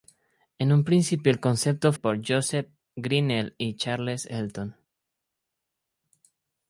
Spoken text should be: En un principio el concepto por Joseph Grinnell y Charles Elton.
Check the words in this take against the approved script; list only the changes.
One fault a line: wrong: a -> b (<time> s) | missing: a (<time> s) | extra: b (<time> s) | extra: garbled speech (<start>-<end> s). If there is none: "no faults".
no faults